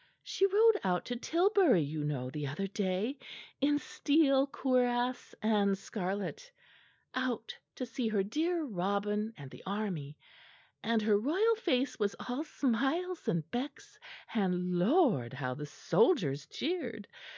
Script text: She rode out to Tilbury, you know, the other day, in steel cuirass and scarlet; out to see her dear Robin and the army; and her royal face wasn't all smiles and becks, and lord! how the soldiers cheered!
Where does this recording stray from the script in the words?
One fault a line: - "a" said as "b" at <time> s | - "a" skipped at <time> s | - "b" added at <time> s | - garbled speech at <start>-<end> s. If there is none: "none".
- "wasn't" said as "was" at 12.0 s